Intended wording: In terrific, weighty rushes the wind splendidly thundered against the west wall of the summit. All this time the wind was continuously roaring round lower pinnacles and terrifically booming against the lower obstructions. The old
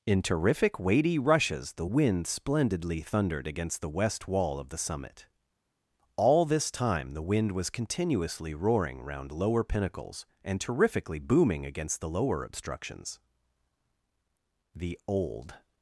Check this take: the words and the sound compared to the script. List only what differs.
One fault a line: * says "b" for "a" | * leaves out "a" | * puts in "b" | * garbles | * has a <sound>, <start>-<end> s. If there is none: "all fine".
all fine